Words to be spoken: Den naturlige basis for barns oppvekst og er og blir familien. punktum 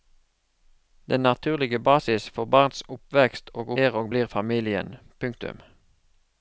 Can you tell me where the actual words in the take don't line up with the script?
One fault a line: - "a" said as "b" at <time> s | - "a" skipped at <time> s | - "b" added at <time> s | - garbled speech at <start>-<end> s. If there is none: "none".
none